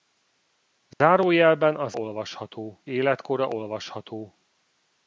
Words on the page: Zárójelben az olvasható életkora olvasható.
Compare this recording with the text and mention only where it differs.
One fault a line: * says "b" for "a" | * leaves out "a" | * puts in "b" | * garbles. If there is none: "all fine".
all fine